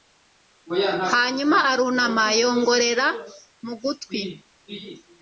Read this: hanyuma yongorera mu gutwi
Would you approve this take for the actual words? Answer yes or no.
no